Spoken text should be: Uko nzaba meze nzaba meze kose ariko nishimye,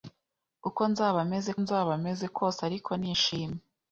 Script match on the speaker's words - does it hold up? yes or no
yes